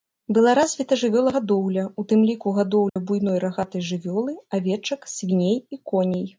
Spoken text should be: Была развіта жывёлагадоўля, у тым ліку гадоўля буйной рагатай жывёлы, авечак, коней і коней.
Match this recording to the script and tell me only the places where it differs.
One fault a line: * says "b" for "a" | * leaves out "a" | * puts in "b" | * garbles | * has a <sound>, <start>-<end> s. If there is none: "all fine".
* has a dropout, 2.9-3.0 s
* says "свіней" for "коней"